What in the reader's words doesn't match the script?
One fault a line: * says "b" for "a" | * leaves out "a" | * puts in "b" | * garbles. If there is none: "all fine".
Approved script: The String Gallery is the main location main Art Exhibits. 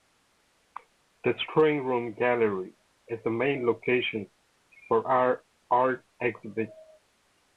* puts in "Room"
* says "for" for "main"